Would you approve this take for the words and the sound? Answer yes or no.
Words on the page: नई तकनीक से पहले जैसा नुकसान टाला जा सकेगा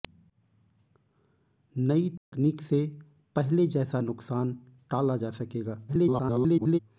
no